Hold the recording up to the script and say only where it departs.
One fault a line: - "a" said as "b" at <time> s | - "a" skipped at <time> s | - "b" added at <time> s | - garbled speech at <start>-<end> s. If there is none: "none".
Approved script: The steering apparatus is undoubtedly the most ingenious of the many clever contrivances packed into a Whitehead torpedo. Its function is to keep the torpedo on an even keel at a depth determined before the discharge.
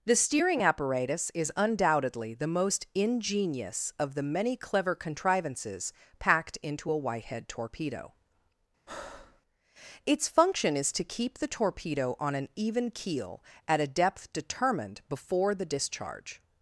none